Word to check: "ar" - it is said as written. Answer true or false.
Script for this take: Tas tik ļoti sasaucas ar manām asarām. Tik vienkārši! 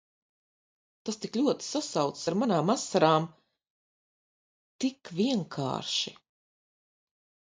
true